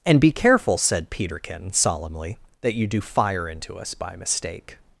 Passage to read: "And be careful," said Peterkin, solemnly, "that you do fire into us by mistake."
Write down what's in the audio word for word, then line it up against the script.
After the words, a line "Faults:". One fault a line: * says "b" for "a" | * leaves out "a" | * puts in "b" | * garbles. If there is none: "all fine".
"And be careful," said Peterkin, solemnly, "that you do fire into us by mistake."
Faults:
all fine